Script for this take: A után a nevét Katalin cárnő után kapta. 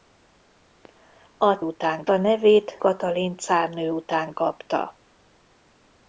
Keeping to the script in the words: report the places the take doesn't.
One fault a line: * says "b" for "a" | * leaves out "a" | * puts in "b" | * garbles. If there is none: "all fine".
all fine